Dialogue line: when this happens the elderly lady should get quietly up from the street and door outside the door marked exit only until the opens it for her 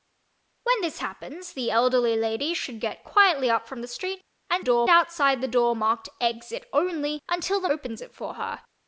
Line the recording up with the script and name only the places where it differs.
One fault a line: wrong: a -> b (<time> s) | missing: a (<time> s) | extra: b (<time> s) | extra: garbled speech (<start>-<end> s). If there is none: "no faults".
no faults